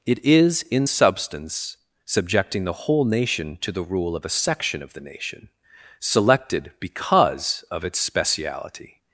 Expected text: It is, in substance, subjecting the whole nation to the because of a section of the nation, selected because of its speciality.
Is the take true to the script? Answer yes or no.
no